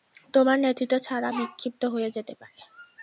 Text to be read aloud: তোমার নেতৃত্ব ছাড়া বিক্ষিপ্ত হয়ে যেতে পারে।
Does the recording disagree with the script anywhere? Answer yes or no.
no